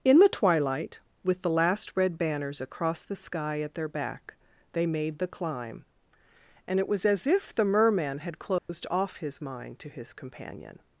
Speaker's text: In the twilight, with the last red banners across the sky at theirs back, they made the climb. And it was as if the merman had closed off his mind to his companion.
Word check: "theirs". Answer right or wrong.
wrong